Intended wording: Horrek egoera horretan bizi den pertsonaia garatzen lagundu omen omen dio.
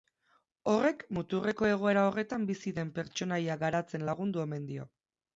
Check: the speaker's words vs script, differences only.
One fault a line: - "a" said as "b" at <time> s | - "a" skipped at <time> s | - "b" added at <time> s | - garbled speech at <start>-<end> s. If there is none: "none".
- "muturreko" added at 1.2 s
- "omen" skipped at 4.7 s